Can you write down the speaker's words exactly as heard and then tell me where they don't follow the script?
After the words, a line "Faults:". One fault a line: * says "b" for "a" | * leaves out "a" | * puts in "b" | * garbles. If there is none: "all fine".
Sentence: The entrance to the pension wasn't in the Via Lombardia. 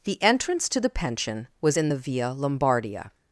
The entrance to the pension was in the Via Lombardia.
Faults:
* says "was" for "wasn't"